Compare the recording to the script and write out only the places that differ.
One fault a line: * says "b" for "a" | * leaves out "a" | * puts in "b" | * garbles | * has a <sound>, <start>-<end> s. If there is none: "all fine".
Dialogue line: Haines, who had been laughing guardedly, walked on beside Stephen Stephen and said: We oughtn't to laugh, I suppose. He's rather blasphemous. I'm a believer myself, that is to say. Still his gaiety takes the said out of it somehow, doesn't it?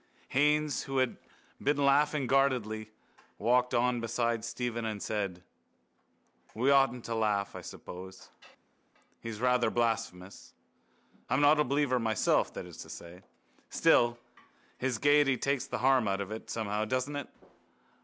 * leaves out "Stephen"
* puts in "not"
* says "harm" for "said"